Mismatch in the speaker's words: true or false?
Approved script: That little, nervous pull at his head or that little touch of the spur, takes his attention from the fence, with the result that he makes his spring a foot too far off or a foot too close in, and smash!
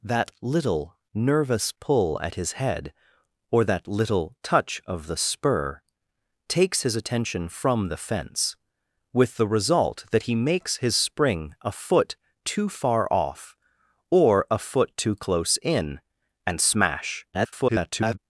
true